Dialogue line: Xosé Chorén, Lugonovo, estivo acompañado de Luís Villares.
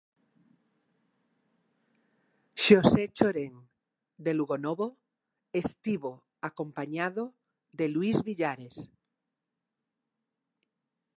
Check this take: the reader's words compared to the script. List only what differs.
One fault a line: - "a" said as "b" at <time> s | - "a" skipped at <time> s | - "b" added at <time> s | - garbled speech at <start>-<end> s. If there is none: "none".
- "de" added at 4.2 s